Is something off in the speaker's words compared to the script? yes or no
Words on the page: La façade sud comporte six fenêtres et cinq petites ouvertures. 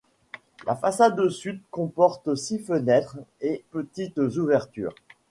yes